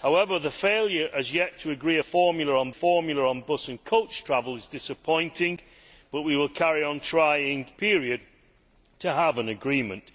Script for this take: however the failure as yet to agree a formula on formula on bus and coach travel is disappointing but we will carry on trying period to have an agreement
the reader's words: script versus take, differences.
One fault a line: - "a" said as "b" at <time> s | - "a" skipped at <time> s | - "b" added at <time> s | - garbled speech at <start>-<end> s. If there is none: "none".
none